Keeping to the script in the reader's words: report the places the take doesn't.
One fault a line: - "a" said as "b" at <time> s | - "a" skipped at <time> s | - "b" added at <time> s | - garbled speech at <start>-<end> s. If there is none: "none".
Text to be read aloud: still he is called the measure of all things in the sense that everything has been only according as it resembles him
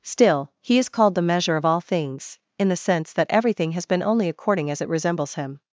none